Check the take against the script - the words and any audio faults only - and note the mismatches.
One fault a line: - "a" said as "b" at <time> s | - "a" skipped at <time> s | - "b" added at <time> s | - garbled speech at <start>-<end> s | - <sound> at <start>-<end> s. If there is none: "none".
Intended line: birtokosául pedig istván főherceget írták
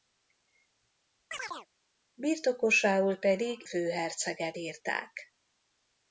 - chirp at 1.3-1.7 s
- "istván" skipped at 3.6 s